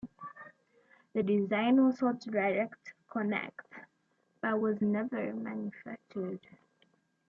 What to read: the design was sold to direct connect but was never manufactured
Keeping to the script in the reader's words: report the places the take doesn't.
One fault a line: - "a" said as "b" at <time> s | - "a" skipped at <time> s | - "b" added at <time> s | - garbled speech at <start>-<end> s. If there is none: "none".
none